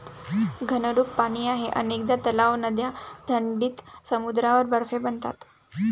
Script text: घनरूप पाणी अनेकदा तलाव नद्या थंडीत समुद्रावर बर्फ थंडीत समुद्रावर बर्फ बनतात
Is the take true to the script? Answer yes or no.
no